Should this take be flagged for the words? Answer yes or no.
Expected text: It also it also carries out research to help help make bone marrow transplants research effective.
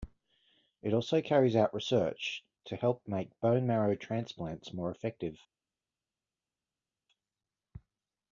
yes